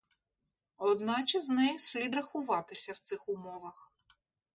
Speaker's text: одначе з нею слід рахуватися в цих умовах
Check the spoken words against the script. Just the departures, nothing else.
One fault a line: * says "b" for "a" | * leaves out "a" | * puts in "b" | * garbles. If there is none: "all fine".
all fine